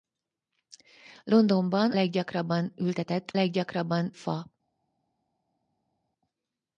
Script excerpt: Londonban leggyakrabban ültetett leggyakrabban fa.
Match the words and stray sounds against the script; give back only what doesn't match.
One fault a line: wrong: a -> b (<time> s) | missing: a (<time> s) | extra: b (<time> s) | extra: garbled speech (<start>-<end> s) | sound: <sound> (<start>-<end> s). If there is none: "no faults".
no faults